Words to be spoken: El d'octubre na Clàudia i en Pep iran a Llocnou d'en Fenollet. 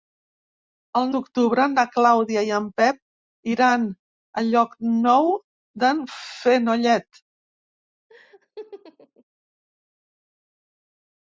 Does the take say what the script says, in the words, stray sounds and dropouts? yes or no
no